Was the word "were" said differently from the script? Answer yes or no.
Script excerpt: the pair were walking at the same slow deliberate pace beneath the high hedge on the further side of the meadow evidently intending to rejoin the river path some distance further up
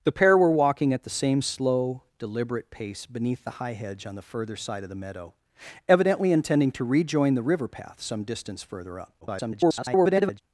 no